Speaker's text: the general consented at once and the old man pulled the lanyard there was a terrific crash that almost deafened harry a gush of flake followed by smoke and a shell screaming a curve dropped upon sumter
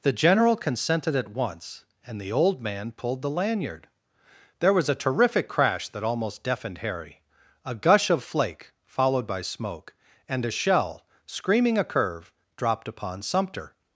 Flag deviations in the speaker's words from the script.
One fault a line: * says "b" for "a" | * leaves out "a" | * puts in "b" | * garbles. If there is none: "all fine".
all fine